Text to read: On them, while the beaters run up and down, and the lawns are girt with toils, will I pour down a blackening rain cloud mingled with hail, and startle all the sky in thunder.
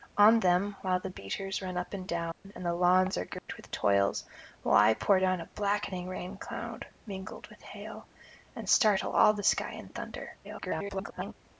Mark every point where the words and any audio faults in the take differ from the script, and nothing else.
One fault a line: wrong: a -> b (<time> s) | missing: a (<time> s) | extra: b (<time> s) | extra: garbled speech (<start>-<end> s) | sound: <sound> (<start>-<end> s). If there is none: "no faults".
sound: dropout (2.3-2.4 s)
sound: dropout (3.4-3.5 s)
extra: garbled speech (10.4-11.3 s)